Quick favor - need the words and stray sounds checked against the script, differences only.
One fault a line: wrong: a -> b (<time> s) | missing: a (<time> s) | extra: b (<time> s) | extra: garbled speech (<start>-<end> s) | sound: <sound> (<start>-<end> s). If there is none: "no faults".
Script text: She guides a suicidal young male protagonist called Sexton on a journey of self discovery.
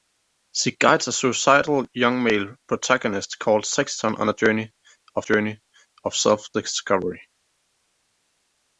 extra: journey of (5.2 s)